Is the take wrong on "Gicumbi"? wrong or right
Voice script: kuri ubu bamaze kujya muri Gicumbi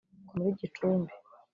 right